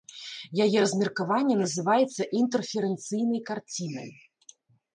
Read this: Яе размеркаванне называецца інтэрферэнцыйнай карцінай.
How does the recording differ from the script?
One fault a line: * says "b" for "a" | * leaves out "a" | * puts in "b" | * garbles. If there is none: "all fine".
all fine